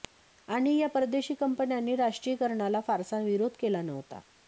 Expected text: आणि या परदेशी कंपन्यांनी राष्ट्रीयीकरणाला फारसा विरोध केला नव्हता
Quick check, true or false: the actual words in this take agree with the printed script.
true